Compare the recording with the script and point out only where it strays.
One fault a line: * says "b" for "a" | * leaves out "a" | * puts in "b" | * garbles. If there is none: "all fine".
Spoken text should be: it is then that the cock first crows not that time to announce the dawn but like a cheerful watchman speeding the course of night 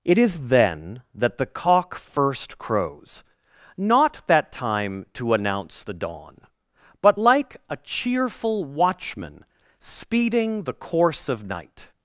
all fine